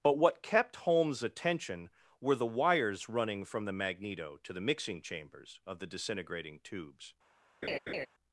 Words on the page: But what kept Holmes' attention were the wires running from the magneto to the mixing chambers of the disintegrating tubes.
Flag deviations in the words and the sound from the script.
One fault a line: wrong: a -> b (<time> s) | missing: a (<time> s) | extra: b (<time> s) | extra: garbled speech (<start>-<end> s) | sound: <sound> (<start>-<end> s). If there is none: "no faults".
sound: laugh (7.6-8.1 s)